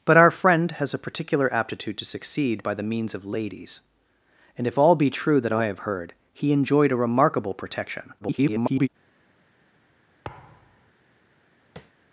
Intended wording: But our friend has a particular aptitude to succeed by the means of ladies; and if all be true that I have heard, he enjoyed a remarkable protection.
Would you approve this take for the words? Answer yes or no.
no